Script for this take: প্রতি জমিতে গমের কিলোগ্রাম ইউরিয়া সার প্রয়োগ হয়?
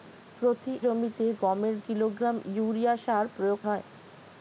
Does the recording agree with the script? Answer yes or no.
yes